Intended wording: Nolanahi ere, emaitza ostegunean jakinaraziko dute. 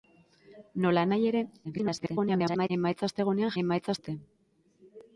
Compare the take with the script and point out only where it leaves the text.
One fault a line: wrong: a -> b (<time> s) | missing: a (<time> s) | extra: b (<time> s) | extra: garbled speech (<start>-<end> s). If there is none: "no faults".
extra: garbled speech (1.6-2.7 s)
wrong: jakinaraziko -> emaitza (3.6 s)